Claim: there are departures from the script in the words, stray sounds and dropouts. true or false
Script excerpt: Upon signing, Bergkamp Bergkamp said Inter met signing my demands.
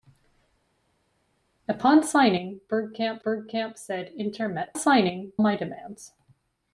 false